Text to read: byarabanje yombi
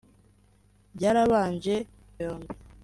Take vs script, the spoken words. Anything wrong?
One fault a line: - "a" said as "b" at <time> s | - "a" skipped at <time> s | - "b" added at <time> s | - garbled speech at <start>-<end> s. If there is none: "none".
none